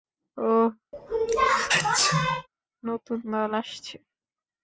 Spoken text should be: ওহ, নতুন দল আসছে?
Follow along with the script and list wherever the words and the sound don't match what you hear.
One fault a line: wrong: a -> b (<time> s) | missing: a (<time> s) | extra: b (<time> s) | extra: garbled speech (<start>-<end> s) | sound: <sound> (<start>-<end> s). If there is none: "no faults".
sound: sneeze (0.9-2.5 s)